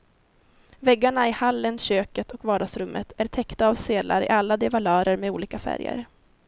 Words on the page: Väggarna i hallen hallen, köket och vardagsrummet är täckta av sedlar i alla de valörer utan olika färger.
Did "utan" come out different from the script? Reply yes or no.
yes